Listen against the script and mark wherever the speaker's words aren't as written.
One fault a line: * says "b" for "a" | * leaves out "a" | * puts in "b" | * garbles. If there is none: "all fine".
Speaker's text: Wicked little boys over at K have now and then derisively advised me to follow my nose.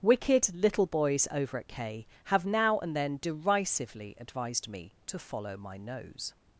all fine